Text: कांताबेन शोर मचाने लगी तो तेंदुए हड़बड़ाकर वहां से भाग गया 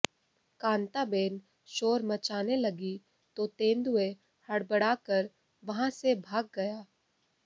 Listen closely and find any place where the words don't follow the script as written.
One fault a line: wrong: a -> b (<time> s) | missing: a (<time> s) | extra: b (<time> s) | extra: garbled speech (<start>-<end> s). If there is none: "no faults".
no faults